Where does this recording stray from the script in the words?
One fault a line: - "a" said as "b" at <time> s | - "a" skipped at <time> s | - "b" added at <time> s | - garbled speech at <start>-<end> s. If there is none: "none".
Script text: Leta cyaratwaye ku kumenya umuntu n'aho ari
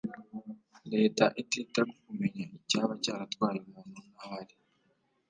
- "cyaratwaye" said as "itita" at 1.4 s
- "icyaba cyaratwaye" added at 2.6 s